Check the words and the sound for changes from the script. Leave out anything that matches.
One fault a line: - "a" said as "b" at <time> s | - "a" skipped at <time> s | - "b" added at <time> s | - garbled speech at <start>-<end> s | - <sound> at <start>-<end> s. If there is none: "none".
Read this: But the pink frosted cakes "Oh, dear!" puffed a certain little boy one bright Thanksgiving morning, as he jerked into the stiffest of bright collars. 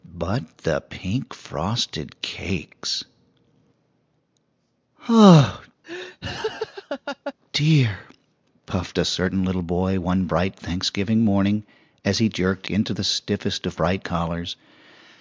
- laugh at 5.8-7.3 s